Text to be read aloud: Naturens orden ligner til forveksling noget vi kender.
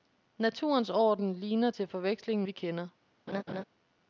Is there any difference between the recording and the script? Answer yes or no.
yes